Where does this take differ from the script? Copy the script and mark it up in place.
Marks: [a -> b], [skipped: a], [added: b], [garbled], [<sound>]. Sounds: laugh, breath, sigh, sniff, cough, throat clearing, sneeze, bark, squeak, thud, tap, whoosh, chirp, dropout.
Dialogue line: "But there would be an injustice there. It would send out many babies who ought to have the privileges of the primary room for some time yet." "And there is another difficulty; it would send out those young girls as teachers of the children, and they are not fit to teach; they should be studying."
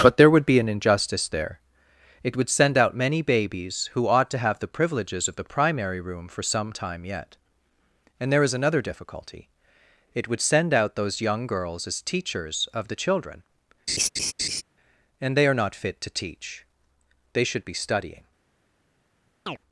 "But there would be an injustice there. It would send out many babies who ought to have the privileges of the primary room for some time yet." "And there is another difficulty; it would send out those young girls as teachers of the children, [laugh] and they are not fit to teach; they should be studying." [chirp]